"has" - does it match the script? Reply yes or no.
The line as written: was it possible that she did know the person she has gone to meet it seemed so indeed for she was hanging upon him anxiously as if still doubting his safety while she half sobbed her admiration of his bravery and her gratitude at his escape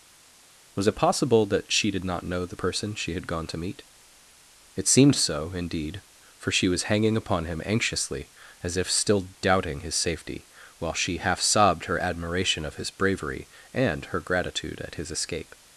no